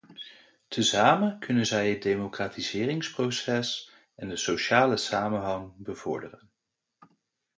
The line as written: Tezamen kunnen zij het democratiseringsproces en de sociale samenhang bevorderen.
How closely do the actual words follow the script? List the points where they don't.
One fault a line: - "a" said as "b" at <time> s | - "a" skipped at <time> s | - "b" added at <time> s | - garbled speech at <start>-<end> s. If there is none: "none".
none